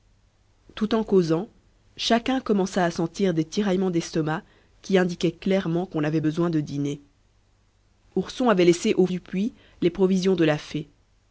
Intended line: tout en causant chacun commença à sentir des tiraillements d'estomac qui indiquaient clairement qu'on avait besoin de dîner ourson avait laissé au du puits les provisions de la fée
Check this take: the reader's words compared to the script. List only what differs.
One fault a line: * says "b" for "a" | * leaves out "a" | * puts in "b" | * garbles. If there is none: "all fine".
all fine